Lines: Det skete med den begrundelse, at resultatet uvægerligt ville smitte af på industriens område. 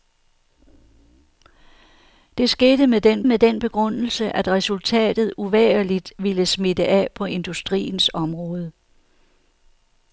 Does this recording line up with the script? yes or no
no